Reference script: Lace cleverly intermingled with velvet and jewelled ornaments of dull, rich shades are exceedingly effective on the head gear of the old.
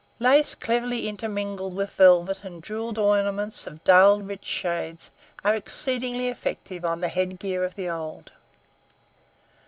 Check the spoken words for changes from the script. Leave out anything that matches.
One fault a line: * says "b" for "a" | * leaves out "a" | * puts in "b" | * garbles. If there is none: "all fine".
all fine